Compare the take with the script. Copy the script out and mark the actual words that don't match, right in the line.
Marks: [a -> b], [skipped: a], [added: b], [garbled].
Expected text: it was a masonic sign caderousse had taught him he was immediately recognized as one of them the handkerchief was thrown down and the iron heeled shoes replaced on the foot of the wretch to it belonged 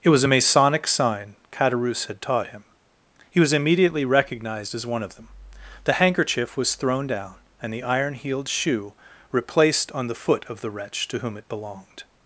it was a masonic sign caderousse had taught him he was immediately recognized as one of them the handkerchief was thrown down and the iron heeled [shoes -> shoe] replaced on the foot of the wretch to [added: whom] it belonged